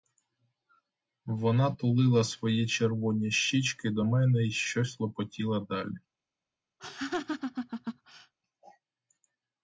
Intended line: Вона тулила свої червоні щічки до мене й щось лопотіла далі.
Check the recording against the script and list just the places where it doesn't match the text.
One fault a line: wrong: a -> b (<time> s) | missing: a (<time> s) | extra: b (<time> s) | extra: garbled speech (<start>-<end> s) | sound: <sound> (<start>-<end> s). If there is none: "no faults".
sound: laugh (6.8-8.3 s)